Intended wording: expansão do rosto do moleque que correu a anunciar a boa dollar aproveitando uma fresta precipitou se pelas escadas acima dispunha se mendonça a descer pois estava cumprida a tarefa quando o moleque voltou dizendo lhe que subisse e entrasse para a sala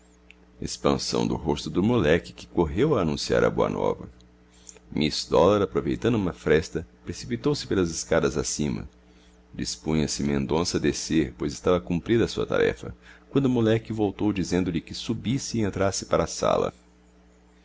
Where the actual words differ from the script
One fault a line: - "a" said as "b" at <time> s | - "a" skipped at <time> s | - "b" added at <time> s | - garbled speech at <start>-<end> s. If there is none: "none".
- "nova miss" added at 3.7 s
- "sua" added at 12.3 s